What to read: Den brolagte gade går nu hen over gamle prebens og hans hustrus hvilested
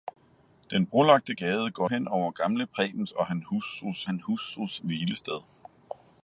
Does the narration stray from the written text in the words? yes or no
yes